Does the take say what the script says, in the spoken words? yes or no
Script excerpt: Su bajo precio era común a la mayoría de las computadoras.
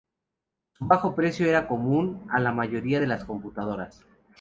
yes